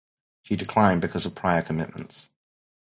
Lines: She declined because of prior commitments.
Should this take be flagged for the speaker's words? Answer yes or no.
no